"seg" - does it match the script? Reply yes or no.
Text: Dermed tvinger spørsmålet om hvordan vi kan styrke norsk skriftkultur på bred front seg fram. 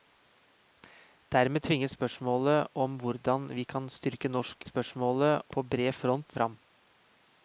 no